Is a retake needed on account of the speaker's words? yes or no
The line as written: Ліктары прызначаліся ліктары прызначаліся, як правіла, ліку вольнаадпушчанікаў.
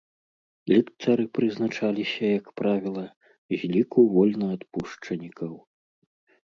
yes